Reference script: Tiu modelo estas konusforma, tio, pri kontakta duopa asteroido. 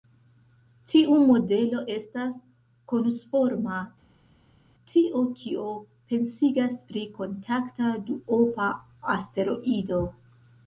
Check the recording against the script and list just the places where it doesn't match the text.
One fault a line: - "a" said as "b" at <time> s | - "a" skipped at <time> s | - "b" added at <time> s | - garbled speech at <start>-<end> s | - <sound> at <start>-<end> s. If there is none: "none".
- "kio pensigas" added at 5.4 s